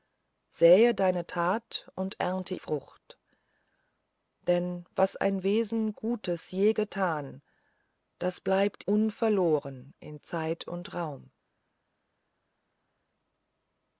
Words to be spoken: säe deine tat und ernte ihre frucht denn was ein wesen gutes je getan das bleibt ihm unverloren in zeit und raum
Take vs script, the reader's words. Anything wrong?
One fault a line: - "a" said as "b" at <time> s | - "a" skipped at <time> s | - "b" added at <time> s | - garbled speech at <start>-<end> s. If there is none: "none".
- "ihre" skipped at 2.5 s
- "ihm" skipped at 8.8 s